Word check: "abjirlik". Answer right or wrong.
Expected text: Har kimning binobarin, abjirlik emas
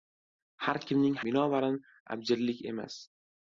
right